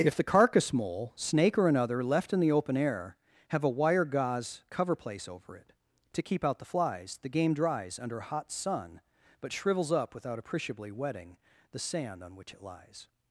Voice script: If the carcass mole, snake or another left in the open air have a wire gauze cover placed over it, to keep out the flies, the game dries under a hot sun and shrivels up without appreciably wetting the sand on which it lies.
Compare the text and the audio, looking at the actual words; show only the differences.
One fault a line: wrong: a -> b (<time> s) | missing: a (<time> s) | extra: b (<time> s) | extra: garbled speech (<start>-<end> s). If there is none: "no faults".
wrong: placed -> place (5.0 s)
wrong: and -> but (9.4 s)